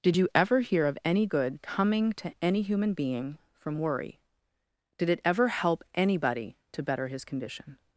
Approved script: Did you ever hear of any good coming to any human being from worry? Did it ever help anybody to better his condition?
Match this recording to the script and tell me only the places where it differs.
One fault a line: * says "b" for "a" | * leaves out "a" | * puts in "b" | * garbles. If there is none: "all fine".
all fine